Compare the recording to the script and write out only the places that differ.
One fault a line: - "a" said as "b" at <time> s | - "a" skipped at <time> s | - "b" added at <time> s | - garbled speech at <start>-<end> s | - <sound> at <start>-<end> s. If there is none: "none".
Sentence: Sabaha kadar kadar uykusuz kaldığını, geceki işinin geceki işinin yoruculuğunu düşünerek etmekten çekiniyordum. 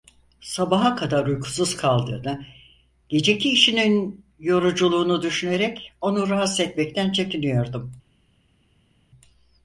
- "kadar" skipped at 1.2 s
- "geceki işinin yoruculuğunu düşünerek" said as "yoruculuğunu düşünerek onu rahatsız" at 4.4 s